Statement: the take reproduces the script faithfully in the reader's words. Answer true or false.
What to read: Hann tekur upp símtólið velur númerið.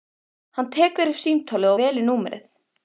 true